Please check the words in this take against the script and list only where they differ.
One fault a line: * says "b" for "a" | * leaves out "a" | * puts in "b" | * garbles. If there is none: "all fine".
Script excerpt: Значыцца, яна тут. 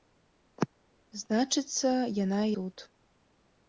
all fine